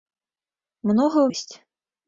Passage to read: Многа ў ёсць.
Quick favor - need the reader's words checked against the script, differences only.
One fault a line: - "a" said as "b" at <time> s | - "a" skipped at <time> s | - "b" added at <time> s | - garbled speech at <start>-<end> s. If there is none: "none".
none